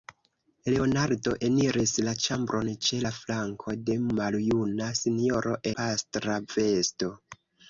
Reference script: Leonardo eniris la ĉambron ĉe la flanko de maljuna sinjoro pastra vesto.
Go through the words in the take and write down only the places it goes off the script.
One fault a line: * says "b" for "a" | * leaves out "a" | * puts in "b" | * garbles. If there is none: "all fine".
all fine